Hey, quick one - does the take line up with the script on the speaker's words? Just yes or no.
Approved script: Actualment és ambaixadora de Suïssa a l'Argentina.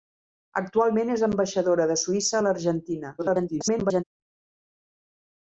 no